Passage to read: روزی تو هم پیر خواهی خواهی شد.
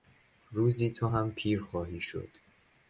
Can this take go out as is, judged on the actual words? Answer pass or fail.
fail